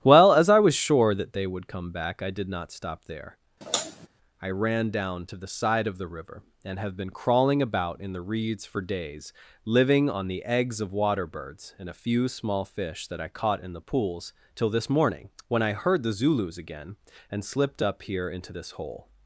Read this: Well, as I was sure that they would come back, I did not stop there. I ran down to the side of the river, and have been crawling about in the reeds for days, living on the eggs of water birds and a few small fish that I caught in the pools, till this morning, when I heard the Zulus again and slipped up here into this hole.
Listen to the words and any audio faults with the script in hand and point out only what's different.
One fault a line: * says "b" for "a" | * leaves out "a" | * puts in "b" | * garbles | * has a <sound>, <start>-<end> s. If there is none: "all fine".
* has a sigh, 3.6-4.1 s